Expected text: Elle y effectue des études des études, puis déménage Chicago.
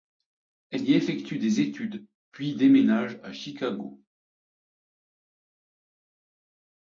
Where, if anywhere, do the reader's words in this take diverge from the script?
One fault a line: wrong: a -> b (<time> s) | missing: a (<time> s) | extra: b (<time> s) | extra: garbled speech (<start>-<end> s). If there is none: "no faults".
missing: des études (2.1 s)
extra: à (3.2 s)